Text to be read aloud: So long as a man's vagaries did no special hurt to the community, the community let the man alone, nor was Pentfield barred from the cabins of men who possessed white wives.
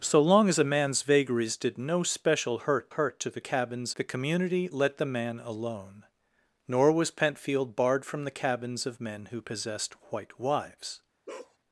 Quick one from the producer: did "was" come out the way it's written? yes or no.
yes